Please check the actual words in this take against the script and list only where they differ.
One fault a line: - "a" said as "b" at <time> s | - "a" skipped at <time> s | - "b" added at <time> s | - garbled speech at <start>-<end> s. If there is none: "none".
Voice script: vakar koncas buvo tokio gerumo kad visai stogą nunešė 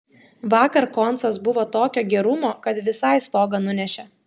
none